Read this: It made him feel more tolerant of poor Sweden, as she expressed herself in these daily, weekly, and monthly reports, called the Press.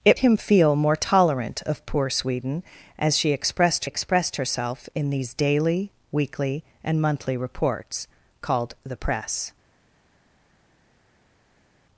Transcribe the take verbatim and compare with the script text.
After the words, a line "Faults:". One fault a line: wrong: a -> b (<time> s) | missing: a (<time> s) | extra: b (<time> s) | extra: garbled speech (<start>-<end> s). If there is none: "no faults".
It him feel more tolerant of poor Sweden, as she expressed expressed herself in these daily, weekly, and monthly reports, called the Press.
Faults:
missing: made (0.2 s)
extra: expressed (3.8 s)